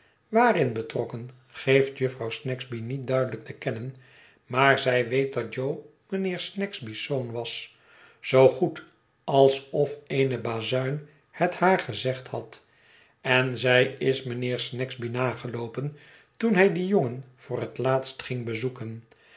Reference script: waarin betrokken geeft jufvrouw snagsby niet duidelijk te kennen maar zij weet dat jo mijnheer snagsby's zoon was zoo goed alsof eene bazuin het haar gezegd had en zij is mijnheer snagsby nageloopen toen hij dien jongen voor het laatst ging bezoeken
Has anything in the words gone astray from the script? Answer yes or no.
no